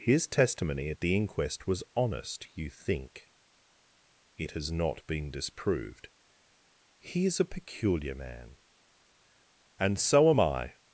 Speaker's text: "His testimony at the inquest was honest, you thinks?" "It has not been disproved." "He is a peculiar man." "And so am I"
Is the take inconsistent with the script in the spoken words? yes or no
yes